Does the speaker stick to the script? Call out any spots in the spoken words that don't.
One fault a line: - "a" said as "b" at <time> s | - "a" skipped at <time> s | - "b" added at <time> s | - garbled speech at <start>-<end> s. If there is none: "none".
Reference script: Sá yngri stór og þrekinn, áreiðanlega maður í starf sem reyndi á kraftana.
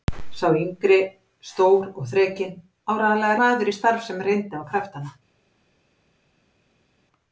none